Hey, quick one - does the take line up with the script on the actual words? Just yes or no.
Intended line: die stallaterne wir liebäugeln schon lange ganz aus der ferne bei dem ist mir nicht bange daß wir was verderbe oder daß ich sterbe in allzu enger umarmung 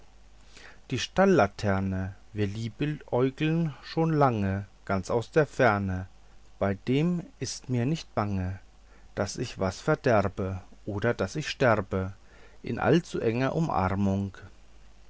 no